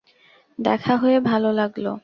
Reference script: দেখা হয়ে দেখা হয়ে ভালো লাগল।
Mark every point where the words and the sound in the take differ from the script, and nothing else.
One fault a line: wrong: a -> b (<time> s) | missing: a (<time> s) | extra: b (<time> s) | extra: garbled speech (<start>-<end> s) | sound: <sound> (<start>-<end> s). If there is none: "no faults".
missing: দেখা হয়ে (1.2 s)